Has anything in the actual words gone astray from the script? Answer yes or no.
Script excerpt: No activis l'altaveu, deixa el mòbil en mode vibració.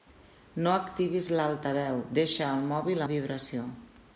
yes